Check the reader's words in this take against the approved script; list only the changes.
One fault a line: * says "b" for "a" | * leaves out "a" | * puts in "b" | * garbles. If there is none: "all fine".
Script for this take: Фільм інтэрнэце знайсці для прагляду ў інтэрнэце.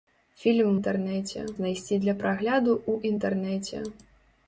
all fine